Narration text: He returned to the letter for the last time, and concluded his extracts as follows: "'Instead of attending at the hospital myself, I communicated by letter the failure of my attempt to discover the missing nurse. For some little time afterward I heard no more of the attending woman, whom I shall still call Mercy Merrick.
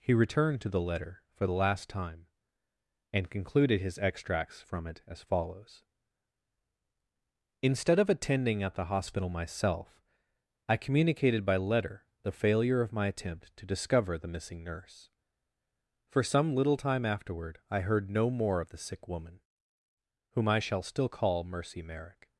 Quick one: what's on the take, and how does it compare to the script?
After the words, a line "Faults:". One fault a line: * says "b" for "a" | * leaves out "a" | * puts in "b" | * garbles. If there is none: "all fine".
He returned to the letter for the last time, and concluded his extracts from it as follows: "'Instead of attending at the hospital myself, I communicated by letter the failure of my attempt to discover the missing nurse. For some little time afterward I heard no more of the sick woman, whom I shall still call Mercy Merrick.
Faults:
* puts in "from it"
* says "sick" for "attending"